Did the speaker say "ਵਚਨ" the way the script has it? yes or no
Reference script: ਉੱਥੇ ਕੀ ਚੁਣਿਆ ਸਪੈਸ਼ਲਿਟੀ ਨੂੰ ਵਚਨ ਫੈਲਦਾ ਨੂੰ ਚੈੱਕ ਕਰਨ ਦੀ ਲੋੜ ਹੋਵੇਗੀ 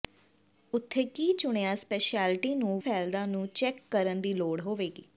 no